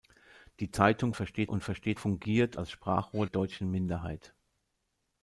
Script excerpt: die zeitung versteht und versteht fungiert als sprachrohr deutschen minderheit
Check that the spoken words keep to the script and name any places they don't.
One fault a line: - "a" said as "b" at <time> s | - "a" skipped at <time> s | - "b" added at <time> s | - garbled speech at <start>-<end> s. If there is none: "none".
none